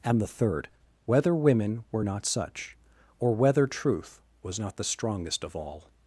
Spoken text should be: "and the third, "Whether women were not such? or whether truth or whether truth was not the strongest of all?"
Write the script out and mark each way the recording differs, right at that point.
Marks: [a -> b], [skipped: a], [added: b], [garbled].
"and the third, "Whether women were not such? or whether truth [skipped: or whether truth] was not the strongest of all?"